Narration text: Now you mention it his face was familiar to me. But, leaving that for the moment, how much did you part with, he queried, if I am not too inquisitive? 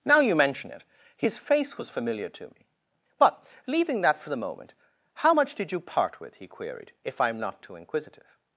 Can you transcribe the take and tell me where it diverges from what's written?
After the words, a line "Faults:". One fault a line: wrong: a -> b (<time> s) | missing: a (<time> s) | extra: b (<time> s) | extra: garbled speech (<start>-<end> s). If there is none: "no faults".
Now you mention it his face was familiar to me. But, leaving that for the moment, how much did you part with, he queried, if I am not too inquisitive?
Faults:
no faults